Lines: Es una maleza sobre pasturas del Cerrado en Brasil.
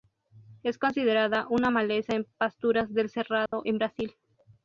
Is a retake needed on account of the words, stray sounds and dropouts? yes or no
yes